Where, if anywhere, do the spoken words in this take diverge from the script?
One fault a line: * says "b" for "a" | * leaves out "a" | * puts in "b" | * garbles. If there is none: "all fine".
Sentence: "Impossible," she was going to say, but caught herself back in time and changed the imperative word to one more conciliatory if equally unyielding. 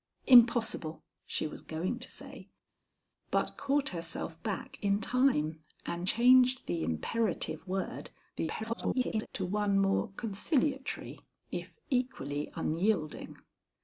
* garbles